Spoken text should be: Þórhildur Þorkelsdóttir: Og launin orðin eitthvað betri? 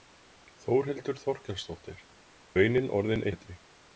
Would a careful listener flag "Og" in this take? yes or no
yes